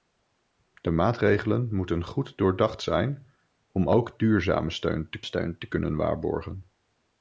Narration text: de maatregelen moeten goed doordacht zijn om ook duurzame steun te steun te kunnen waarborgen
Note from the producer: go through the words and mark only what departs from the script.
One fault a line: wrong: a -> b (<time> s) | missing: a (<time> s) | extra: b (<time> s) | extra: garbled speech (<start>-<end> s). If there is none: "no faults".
no faults